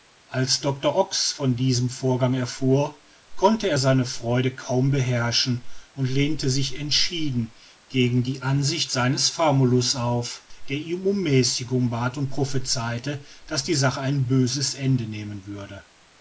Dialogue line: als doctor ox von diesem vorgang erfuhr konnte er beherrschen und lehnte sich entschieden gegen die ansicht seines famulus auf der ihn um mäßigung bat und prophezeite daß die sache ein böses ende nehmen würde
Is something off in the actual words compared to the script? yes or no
yes